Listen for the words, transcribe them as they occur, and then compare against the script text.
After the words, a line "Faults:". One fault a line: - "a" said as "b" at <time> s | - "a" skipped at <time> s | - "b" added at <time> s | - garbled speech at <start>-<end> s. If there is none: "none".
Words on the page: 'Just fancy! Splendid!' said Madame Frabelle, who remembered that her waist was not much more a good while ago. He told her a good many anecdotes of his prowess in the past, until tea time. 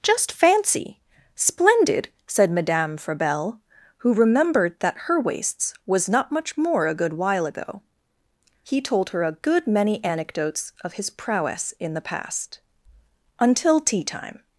'Just fancy! Splendid!' said Madame Frabelle, who remembered that her waists was not much more a good while ago. He told her a good many anecdotes of his prowess in the past, until tea time.
Faults:
- "waist" said as "waists" at 5.2 s